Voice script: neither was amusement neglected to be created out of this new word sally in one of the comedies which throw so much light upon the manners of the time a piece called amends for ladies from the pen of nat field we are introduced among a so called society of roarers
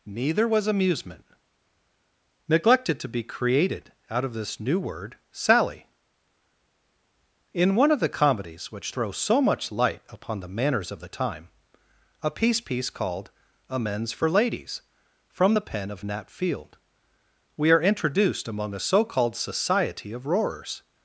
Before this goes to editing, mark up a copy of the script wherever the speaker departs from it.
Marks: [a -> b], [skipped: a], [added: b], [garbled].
neither was amusement neglected to be created out of this new word sally in one of the comedies which throw so much light upon the manners of the time a piece [added: piece] called amends for ladies from the pen of nat field we are introduced among a so called society of roarers